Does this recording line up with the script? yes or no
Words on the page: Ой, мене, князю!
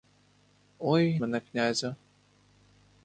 yes